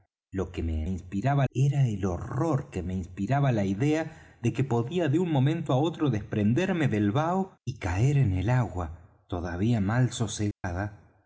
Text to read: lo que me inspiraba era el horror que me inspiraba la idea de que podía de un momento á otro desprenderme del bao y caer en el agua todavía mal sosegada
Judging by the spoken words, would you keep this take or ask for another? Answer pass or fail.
pass